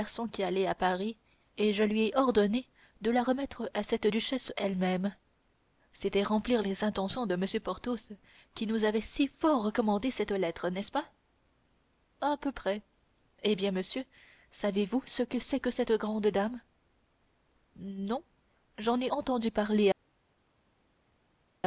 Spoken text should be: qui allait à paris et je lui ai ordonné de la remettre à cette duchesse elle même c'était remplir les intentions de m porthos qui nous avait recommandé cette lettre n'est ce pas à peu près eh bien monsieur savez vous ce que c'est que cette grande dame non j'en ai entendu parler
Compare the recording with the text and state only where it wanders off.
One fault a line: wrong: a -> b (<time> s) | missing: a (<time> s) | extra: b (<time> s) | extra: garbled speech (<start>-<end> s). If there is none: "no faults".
extra: si fort (9.0 s)